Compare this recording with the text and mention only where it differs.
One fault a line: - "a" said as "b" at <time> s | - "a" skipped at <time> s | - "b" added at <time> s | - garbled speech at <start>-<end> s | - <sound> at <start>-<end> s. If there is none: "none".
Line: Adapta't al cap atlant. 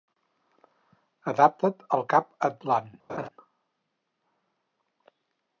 - laugh at 3.1-3.3 s